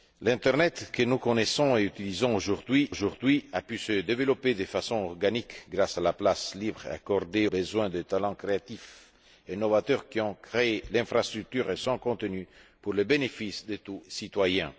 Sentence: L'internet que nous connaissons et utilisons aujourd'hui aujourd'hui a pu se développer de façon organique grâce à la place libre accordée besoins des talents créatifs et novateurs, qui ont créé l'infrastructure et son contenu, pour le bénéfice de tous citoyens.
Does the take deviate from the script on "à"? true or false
false